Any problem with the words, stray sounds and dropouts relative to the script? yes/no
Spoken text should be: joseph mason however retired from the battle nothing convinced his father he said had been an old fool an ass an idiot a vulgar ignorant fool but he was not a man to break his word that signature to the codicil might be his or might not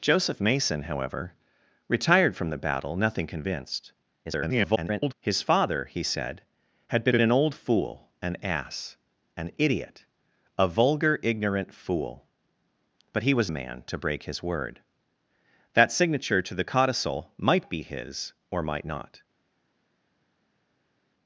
yes